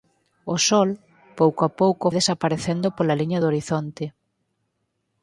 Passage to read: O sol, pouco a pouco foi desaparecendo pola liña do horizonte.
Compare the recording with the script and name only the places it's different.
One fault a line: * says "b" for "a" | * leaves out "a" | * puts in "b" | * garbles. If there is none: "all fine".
* leaves out "foi"